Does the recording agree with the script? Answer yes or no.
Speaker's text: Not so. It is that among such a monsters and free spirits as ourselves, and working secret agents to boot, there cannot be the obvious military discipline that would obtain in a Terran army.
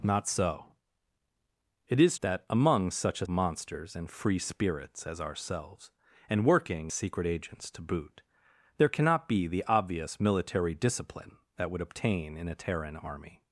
yes